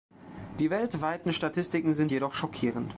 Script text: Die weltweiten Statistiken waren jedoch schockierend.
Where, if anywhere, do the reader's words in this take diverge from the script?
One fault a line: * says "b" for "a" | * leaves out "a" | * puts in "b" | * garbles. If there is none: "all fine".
* says "sind" for "waren"